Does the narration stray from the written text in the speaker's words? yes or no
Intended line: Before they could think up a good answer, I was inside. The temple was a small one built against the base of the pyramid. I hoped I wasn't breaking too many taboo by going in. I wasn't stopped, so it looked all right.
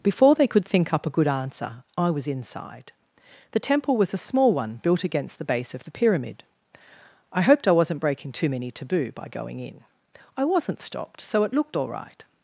no